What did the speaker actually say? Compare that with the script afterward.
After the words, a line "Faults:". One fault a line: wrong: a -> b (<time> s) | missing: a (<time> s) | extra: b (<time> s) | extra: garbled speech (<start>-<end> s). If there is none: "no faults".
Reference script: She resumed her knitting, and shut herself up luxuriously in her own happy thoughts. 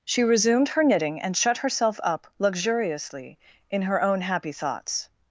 She resumed her knitting, and shut herself up luxuriously in her own happy thoughts.
Faults:
no faults